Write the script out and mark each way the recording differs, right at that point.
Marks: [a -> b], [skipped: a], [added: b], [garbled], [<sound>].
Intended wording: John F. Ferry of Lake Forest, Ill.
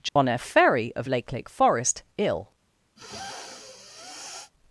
John [dropout] F. Ferry of Lake [added: Lake] Forest, Ill. [sniff]